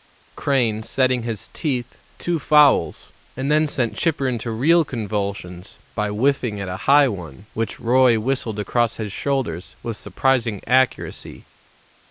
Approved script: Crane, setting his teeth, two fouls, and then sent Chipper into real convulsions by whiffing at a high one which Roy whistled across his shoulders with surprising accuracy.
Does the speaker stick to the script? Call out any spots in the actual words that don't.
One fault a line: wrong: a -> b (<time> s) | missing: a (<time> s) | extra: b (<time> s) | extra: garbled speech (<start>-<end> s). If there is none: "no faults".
no faults